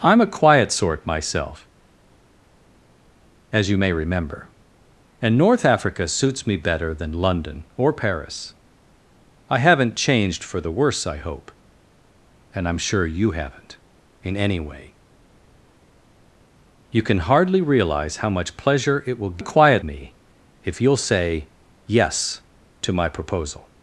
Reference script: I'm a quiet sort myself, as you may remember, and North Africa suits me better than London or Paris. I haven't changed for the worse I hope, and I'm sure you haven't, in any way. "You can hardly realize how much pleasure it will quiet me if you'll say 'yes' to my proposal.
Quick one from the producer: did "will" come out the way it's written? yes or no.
yes